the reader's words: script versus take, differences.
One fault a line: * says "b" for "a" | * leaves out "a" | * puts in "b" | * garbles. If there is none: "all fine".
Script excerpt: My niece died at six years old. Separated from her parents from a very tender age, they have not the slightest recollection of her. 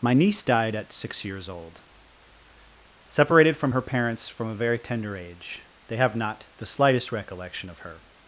all fine